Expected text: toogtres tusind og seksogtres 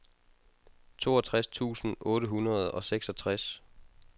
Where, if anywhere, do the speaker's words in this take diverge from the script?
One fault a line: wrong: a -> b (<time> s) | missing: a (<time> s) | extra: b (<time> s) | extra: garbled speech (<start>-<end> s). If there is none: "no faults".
extra: otte hundrede (2.0 s)